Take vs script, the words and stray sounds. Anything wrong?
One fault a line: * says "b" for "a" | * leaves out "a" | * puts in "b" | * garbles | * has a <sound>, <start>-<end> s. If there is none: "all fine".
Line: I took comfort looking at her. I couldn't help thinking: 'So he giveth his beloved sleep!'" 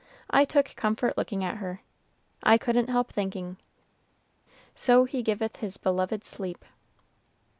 all fine